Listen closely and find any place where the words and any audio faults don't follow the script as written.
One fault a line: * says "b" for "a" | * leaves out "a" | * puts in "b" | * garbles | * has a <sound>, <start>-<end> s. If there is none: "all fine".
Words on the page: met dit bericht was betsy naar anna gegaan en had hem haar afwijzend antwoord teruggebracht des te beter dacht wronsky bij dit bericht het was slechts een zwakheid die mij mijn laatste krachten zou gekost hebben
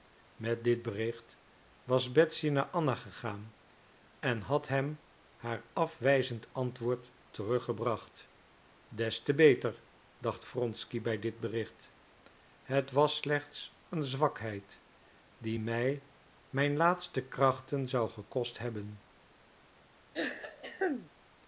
* has a throat clearing, 20.1-21.1 s